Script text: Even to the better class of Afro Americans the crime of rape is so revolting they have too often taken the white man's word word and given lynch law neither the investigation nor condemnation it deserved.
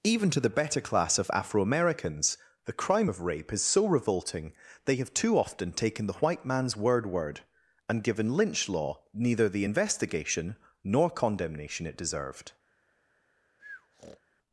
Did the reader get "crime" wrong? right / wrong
right